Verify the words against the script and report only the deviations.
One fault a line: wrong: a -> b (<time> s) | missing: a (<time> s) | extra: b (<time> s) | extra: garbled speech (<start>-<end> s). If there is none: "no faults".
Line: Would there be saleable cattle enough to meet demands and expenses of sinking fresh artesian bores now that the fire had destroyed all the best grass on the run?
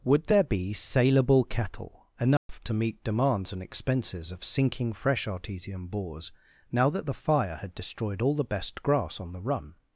no faults